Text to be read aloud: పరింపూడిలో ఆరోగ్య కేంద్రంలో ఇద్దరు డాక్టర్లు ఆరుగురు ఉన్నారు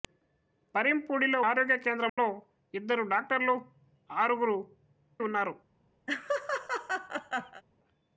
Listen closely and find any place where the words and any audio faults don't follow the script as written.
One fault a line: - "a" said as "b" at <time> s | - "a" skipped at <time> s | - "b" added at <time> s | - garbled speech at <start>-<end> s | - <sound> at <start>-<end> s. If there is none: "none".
- dropout at 2.1-2.2 s
- laugh at 6.1-7.6 s